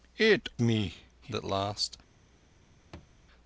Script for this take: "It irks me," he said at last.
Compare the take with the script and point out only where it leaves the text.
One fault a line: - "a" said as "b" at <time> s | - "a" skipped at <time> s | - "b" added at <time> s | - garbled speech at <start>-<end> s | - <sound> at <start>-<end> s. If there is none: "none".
- "irks" skipped at 0.5 s
- "said" skipped at 1.3 s
- thud at 2.9-3.1 s